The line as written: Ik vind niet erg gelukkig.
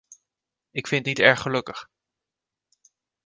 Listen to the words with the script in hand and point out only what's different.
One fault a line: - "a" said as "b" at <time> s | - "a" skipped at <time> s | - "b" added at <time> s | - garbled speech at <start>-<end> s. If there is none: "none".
none